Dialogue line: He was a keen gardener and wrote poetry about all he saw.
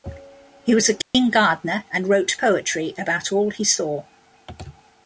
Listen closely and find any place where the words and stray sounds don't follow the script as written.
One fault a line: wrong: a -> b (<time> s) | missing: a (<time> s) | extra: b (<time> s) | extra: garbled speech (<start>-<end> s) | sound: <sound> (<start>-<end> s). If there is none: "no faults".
sound: dropout (1.0-1.1 s)